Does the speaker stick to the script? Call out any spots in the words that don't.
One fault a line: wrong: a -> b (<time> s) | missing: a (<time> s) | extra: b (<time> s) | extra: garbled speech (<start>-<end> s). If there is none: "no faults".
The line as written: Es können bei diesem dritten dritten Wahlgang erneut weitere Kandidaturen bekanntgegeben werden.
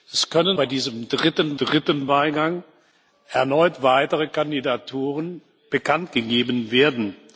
no faults